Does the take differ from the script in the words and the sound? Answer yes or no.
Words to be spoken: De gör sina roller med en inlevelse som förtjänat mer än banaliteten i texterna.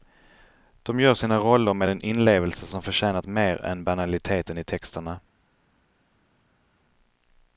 no